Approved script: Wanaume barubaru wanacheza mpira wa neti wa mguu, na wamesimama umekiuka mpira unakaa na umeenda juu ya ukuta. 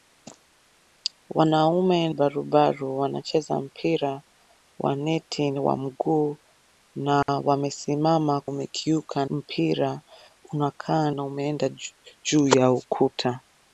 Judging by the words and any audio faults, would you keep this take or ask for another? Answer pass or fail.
fail